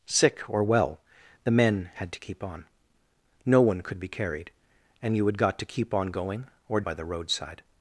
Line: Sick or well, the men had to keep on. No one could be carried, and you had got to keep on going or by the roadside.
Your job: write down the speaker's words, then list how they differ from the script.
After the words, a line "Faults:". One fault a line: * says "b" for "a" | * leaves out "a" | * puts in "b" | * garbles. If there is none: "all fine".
Sick or well, the men had to keep on. No one could be carried, and you had got to keep on going or by the roadside.
Faults:
all fine